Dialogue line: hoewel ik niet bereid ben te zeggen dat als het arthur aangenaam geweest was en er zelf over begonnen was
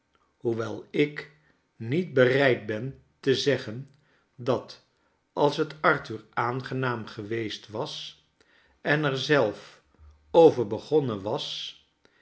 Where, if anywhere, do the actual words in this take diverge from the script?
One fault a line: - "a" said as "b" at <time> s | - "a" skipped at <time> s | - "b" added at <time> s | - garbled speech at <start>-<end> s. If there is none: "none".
none